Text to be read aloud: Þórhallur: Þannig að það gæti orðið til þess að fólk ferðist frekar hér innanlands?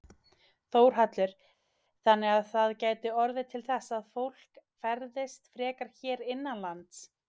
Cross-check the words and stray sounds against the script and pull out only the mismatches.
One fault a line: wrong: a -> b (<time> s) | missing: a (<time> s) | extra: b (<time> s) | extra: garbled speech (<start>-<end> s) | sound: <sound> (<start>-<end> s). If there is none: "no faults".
no faults